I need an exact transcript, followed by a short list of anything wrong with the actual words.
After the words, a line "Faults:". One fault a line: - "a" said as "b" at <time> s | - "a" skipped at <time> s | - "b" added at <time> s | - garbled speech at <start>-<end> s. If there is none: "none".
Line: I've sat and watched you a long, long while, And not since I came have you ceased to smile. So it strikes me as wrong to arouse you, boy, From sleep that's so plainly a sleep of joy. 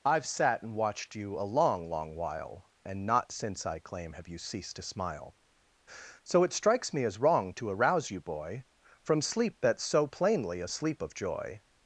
I've sat and watched you a long, long while, And not since I claim have you ceased to smile. So it strikes me as wrong to arouse you, boy, From sleep that's so plainly a sleep of joy.
Faults:
- "came" said as "claim" at 3.8 s